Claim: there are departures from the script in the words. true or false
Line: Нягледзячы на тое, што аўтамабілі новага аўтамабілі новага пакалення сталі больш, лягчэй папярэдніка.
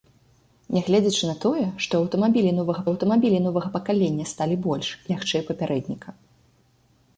false